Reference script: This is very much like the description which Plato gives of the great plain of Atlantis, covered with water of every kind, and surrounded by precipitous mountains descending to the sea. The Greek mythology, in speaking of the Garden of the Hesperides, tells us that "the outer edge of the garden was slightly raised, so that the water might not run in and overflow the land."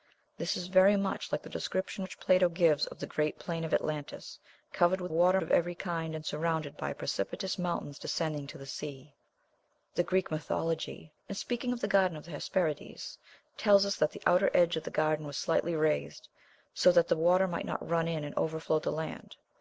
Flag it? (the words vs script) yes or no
no